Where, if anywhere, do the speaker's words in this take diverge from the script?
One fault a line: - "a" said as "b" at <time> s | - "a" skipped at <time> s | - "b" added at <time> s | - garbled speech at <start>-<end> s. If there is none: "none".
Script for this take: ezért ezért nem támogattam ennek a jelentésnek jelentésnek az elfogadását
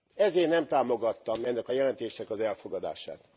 - "ezért" skipped at 0.5 s
- "jelentésnek" skipped at 2.3 s